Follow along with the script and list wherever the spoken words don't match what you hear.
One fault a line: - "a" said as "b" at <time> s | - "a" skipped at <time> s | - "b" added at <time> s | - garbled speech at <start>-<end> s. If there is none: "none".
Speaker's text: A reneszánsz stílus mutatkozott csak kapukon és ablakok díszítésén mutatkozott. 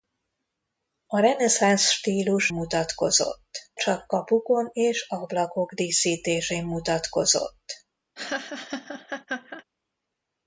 none